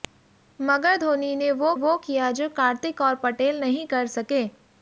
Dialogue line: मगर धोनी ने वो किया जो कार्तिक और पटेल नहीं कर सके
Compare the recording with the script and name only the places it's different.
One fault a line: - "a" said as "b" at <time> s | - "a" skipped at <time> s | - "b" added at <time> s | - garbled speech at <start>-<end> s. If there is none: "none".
- "वो" added at 1.7 s